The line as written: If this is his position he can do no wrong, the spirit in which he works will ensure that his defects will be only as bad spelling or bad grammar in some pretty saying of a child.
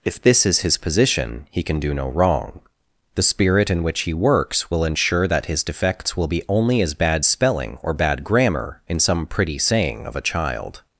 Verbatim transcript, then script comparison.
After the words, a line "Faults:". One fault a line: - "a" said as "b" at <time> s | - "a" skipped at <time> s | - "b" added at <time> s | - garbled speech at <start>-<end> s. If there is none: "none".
If this is his position he can do no wrong, the spirit in which he works will ensure that his defects will be only as bad spelling or bad grammar in some pretty saying of a child.
Faults:
none